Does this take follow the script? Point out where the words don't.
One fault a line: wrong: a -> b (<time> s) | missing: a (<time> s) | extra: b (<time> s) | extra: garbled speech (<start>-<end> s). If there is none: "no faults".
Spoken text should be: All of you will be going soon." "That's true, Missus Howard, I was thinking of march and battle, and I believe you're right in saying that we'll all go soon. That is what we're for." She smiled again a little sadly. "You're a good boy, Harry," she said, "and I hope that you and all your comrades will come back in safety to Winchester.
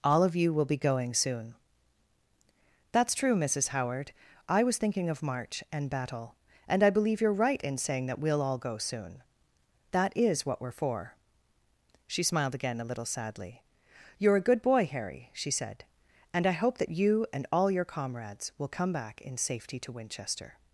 no faults